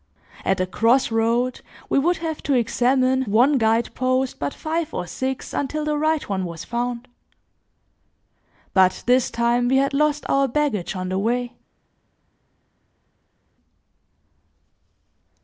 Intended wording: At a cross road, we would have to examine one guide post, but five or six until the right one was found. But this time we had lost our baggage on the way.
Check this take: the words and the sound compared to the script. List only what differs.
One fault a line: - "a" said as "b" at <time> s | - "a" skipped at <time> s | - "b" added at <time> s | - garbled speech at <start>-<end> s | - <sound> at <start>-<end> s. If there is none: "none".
none